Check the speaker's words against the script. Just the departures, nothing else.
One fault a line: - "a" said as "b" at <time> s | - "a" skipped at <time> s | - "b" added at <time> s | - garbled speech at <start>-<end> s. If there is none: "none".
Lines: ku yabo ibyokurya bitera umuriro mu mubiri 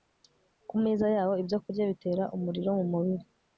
- "meza" added at 0.8 s